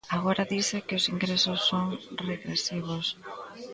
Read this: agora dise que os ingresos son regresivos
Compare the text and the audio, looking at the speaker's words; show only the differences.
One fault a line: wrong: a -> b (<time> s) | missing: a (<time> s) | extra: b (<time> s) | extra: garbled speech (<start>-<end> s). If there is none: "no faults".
no faults